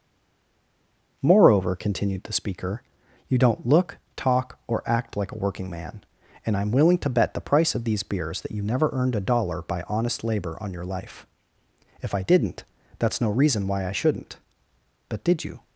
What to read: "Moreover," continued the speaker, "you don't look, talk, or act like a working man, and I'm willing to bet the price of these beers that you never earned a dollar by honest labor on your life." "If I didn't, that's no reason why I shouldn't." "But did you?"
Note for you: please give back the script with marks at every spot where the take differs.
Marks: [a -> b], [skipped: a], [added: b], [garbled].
"Moreover," continued the speaker, "you don't look, talk, or act like a working man, and I'm willing to bet the price of these beers that you never earned a dollar by honest labor on your life." "If I didn't, that's no reason why I shouldn't." "But did you?"